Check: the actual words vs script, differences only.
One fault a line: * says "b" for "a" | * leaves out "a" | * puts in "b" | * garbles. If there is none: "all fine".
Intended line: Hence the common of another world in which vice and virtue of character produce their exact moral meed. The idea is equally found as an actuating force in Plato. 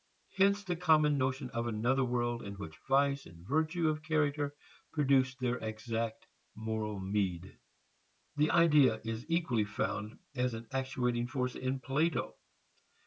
* puts in "notion"